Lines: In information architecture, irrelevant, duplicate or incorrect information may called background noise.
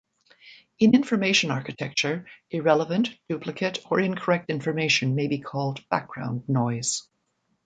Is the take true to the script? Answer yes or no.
no